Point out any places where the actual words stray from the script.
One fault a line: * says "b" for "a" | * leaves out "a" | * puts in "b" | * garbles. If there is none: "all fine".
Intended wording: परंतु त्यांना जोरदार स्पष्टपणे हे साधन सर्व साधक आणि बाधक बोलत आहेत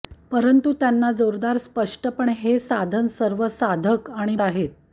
* leaves out "बाधक बोलत"